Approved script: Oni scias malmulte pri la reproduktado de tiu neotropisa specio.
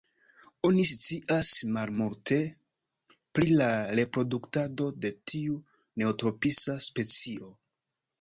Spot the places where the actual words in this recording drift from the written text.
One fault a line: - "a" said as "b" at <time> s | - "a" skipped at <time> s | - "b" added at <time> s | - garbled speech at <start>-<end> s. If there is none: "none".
none